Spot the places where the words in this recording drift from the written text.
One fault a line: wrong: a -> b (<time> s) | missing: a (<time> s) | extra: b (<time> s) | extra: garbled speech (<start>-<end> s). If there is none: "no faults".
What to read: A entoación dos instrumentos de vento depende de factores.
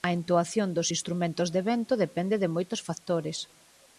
extra: moitos (2.5 s)